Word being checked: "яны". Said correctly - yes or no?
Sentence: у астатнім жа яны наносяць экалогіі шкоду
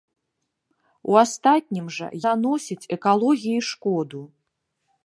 no